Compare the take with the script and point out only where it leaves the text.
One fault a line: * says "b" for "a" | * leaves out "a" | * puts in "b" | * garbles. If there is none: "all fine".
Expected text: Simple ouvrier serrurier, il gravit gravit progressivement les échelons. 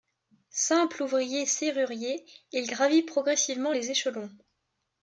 * leaves out "gravit"